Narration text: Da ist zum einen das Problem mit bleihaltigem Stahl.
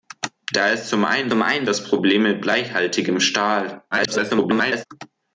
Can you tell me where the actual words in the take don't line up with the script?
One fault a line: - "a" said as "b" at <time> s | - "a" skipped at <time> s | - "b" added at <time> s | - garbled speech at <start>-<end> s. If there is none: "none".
- "zum einen" added at 1.3 s
- garbled speech at 3.9-4.9 s